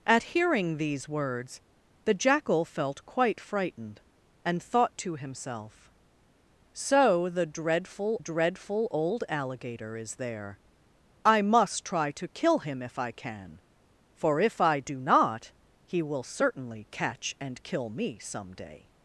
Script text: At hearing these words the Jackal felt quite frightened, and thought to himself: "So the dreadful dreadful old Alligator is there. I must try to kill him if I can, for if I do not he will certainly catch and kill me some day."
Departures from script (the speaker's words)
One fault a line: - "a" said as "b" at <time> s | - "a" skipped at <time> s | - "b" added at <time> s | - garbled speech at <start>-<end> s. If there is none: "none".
none